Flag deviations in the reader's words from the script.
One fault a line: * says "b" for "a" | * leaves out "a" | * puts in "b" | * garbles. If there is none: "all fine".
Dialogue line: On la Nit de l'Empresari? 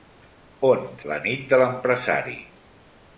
all fine